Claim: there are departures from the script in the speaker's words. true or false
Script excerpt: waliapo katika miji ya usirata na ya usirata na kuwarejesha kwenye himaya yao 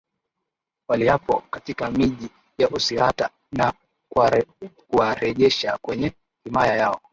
true